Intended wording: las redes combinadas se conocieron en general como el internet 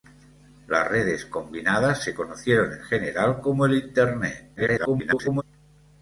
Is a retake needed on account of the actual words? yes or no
yes